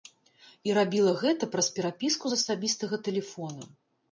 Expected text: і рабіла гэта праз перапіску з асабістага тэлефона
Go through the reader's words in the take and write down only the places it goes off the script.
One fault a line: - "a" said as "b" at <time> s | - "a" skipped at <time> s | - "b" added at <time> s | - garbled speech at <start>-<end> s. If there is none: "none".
none